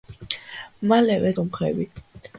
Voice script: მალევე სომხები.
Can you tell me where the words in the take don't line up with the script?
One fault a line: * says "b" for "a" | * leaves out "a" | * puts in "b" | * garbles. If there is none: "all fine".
all fine